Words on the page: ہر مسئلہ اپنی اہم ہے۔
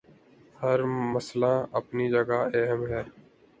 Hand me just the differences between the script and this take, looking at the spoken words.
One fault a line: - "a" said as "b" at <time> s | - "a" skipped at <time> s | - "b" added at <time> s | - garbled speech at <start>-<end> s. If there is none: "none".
- "جگہ" added at 2.1 s